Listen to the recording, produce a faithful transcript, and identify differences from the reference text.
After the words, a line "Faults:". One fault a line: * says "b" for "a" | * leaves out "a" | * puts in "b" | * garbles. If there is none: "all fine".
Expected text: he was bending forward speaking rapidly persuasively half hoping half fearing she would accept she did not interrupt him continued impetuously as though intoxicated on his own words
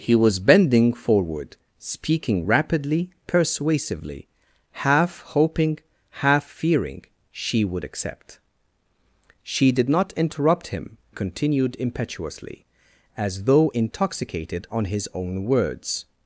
he was bending forward speaking rapidly persuasively half hoping half fearing she would accept she did not interrupt him continued impetuously as though intoxicated on his own words
Faults:
all fine